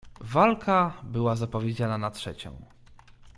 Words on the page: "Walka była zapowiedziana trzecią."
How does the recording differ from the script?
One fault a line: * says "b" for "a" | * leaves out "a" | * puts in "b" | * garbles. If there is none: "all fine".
* puts in "na"